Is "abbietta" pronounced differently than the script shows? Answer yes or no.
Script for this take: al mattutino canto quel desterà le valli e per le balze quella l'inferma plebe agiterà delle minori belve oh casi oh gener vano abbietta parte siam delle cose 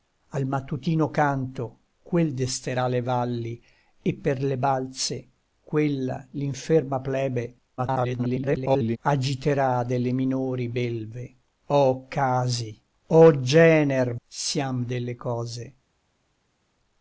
yes